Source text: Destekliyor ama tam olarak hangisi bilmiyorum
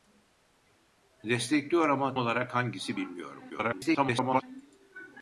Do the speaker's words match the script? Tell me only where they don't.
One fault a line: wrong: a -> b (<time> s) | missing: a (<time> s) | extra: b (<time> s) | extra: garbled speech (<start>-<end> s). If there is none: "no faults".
missing: tam (2.1 s)
extra: garbled speech (3.5-4.4 s)